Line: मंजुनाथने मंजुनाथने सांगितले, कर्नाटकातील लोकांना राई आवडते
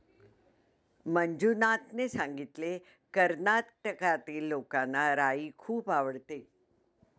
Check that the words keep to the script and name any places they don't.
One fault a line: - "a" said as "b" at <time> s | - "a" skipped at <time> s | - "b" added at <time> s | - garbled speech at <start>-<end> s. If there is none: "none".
- "मंजुनाथने" skipped at 2.1 s
- "खूप" added at 5.6 s